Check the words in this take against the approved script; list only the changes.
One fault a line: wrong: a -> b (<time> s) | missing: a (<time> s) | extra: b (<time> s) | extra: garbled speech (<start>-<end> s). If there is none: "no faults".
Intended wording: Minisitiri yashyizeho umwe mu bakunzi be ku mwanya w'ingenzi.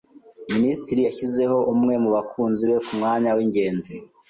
no faults